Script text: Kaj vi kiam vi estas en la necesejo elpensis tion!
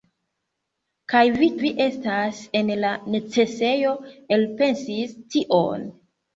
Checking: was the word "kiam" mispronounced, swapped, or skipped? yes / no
yes